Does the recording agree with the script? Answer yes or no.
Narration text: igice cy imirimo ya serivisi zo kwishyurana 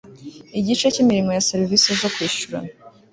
yes